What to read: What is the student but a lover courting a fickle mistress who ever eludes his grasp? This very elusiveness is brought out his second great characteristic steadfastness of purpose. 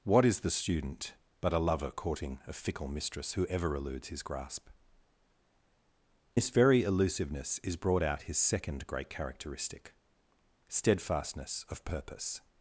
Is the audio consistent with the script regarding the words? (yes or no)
yes